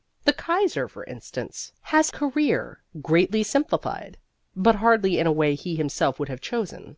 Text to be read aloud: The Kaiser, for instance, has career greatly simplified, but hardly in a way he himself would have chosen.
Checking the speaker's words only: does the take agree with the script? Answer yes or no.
yes